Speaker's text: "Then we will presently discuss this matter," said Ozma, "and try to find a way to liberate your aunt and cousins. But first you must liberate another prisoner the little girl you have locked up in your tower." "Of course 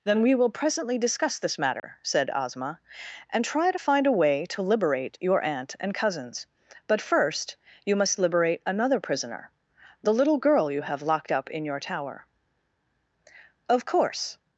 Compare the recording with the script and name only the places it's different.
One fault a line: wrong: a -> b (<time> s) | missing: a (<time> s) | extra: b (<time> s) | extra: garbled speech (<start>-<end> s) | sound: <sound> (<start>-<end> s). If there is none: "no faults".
sound: dropout (1.8-1.8 s)